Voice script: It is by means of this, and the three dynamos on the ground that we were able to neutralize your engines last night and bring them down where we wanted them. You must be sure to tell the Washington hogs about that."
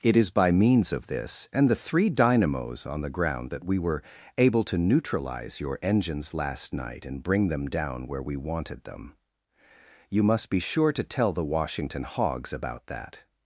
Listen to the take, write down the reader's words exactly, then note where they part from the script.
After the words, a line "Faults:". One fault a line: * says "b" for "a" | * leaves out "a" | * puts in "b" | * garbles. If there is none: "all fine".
It is by means of this, and the three dynamos on the ground that we were able to neutralize your engines last night and bring them down where we wanted them. You must be sure to tell the Washington hogs about that."
Faults:
all fine